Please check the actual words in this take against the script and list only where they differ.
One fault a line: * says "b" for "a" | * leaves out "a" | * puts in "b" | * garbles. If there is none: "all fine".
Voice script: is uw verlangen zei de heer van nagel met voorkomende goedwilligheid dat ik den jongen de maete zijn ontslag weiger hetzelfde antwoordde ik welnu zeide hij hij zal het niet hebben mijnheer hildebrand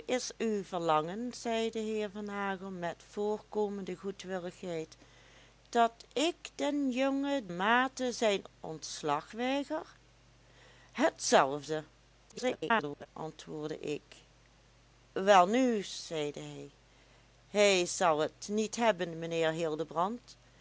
* leaves out "de"
* garbles